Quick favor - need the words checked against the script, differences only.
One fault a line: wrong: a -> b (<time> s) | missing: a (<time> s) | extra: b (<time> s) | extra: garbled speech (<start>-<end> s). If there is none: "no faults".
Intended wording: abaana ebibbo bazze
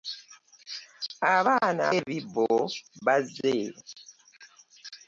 no faults